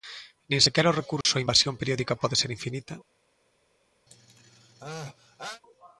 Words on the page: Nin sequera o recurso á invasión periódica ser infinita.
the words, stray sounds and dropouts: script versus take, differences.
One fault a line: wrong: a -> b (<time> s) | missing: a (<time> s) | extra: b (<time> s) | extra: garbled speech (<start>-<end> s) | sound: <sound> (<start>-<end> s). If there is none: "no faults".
sound: dropout (1.2-1.3 s)
extra: pode (2.2 s)
sound: sneeze (4.1-5.6 s)